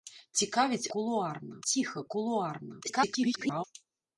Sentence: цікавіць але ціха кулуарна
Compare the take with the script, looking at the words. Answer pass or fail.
fail